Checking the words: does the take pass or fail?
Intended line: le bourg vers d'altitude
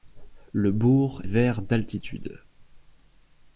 pass